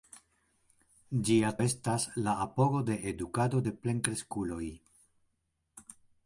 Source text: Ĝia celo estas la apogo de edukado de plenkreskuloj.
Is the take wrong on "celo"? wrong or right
wrong